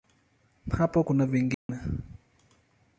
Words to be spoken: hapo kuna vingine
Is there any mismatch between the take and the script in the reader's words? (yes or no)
no